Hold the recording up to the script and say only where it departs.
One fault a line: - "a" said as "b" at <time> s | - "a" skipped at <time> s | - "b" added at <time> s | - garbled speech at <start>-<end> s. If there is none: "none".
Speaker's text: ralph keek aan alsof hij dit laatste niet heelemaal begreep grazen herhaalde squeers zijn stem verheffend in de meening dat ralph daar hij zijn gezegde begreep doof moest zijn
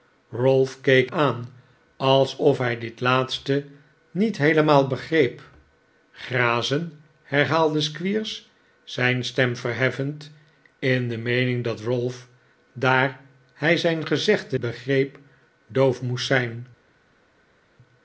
none